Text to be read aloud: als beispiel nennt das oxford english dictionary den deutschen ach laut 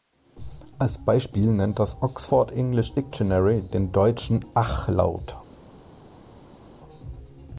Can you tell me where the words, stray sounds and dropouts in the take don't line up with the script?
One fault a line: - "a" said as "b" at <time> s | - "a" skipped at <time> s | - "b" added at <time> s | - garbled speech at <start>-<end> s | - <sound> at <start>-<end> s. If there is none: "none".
none